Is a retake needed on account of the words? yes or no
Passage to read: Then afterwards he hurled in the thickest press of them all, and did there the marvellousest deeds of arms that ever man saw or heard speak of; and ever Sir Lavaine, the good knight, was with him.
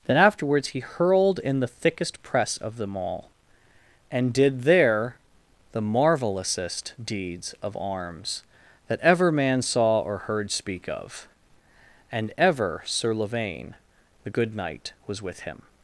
no